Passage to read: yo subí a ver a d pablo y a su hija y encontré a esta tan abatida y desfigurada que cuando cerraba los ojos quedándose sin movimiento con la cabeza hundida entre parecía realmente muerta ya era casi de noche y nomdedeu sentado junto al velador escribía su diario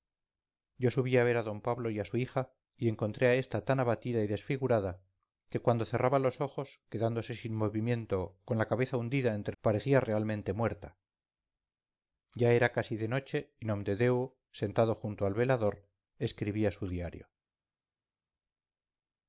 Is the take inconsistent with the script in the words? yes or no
no